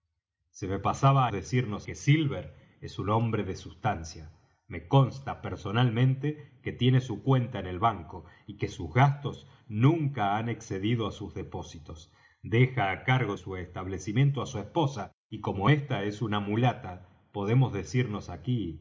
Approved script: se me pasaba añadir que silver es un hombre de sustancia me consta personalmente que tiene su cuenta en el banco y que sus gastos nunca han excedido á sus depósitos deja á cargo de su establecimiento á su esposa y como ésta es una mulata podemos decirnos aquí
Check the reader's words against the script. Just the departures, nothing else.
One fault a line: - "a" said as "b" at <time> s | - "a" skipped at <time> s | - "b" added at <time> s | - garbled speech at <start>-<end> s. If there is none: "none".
- "añadir" said as "decirnos" at 1.3 s
- "de" skipped at 13.4 s